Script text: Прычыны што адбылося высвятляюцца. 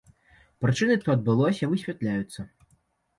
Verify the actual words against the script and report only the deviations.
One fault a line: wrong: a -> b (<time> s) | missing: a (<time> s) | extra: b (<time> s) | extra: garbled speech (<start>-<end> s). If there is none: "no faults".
no faults